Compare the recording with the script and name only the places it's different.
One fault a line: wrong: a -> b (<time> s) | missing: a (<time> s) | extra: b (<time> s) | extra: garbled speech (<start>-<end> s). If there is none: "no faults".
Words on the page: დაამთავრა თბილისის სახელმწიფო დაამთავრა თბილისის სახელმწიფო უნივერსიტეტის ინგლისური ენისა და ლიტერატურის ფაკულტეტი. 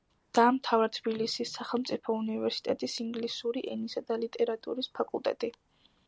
missing: დაამთავრა თბილისის სახელმწიფო (2.1 s)